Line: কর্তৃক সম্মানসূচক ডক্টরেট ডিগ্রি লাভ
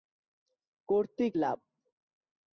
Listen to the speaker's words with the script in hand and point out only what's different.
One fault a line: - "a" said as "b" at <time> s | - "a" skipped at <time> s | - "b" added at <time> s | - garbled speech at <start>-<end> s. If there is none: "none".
- "সম্মানসূচক ডক্টরেট ডিগ্রি" skipped at 1.3 s